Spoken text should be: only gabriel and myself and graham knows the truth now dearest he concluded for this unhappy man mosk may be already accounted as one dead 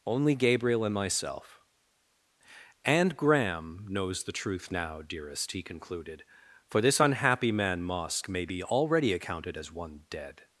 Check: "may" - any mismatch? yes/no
no